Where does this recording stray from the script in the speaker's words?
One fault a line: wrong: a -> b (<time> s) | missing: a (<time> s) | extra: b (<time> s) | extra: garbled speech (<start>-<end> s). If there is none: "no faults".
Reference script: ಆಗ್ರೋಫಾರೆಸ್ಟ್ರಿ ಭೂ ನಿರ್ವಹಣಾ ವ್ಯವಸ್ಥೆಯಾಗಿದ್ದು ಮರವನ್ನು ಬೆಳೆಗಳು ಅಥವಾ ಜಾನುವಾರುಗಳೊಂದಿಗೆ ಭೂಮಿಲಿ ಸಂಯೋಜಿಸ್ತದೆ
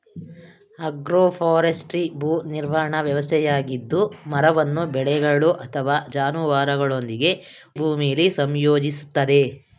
no faults